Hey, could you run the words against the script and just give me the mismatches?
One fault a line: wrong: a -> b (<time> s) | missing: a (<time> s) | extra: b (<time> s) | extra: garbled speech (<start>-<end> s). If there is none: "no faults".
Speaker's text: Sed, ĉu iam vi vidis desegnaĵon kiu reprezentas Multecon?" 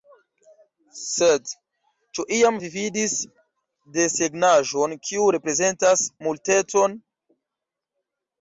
no faults